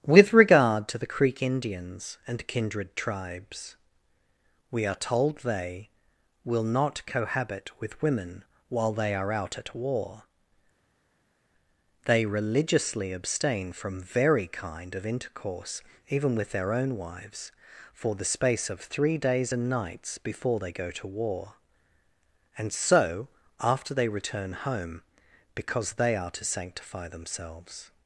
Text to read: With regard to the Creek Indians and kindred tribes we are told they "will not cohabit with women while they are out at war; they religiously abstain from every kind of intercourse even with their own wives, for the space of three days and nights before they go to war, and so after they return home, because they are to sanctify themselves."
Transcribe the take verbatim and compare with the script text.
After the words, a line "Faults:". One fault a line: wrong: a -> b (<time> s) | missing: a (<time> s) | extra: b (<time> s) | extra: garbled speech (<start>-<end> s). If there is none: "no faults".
With regard to the Creek Indians and kindred tribes we are told they "will not cohabit with women while they are out at war; they religiously abstain from very kind of intercourse even with their own wives, for the space of three days and nights before they go to war, and so after they return home, because they are to sanctify themselves."
Faults:
wrong: every -> very (14.0 s)